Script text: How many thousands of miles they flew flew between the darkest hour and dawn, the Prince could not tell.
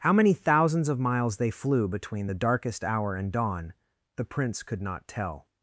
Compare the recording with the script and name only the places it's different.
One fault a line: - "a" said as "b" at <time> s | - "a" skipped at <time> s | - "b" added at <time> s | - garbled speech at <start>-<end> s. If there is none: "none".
- "flew" skipped at 1.9 s